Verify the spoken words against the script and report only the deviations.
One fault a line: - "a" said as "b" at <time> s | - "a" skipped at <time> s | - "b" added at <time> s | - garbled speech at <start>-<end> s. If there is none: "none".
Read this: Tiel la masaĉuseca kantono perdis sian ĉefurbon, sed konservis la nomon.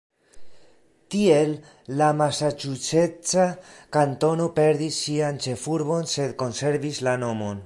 none